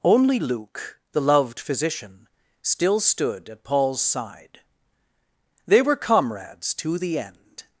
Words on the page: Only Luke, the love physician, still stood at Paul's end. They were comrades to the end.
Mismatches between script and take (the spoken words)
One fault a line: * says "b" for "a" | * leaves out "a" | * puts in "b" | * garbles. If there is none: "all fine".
* says "loved" for "love"
* says "side" for "end"